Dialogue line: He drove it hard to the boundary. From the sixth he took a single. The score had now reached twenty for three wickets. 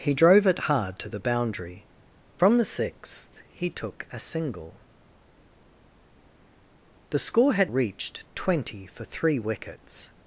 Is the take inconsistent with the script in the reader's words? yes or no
yes